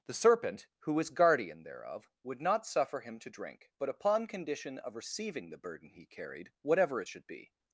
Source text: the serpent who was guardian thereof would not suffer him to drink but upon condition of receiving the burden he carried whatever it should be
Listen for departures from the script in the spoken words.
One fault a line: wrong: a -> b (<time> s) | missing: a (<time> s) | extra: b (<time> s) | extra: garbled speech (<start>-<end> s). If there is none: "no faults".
no faults